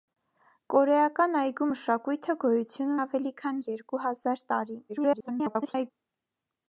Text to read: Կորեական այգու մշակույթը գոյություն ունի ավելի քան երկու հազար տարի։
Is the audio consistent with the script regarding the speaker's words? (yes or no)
no